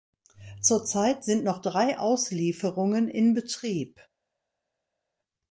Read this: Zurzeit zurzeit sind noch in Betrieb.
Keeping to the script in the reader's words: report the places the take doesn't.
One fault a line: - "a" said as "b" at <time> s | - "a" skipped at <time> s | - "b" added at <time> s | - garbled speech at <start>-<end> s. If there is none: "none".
- "zurzeit" skipped at 1.2 s
- "drei Auslieferungen" added at 1.6 s